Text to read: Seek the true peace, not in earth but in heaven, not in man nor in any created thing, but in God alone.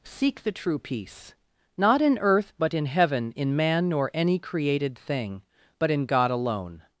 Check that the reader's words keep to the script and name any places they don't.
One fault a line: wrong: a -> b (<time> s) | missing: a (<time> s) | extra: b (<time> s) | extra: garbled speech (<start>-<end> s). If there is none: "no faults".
missing: not (3.3 s)
missing: in (4.1 s)